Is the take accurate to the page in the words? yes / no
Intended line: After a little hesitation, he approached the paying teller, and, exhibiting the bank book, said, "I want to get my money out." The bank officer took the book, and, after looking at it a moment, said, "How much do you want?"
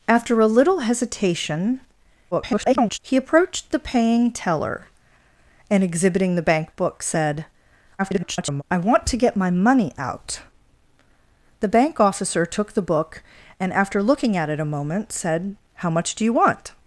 no